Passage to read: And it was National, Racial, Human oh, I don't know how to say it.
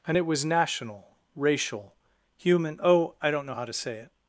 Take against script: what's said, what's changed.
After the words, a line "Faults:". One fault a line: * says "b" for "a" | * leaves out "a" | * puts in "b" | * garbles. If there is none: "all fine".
And it was National, Racial, Human oh, I don't know how to say it.
Faults:
all fine